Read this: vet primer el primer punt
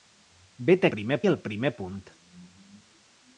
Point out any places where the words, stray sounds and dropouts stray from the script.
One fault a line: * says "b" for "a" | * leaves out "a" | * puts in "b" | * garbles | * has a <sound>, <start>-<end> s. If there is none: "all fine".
all fine